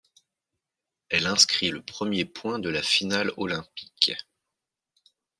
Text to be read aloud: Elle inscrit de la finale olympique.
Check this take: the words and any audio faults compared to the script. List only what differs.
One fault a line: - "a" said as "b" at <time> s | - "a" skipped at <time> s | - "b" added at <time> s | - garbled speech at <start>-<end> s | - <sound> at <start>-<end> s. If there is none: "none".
- "le premier point" added at 1.7 s